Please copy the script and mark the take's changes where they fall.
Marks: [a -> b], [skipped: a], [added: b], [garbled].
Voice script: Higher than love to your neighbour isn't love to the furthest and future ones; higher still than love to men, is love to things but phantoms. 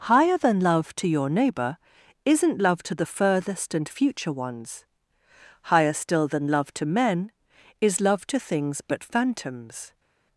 Higher than love to your neighbour isn't love to the furthest and future ones; higher still than love to men, is love to things but phantoms.